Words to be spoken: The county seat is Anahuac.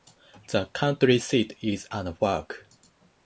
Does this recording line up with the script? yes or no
yes